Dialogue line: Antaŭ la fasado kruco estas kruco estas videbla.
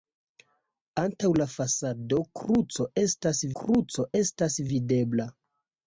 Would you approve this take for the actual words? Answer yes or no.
yes